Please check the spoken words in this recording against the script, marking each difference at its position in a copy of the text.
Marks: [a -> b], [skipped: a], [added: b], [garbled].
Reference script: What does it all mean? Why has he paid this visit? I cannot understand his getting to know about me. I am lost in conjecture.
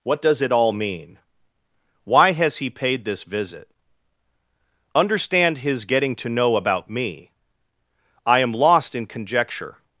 What does it all mean? Why has he paid this visit? [skipped: I cannot] understand his getting to know about me. I am lost in conjecture.